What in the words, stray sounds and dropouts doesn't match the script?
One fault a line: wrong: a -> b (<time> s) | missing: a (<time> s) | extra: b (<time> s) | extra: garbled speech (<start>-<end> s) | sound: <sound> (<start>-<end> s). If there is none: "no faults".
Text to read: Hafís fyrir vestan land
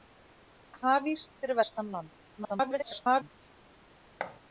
extra: garbled speech (2.4-3.6 s)
sound: thud (4.2-4.4 s)